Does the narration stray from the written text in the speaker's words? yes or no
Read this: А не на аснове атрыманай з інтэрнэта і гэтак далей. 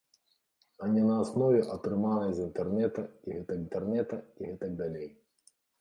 yes